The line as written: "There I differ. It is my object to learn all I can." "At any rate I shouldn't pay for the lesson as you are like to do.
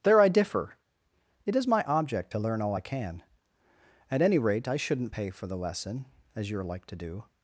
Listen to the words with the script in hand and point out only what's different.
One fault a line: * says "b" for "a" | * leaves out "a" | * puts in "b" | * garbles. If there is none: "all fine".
all fine